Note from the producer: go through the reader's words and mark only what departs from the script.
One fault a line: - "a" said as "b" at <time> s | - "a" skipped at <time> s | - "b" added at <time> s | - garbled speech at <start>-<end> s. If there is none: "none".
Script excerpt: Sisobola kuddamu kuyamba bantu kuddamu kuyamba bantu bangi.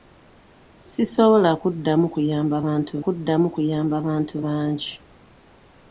none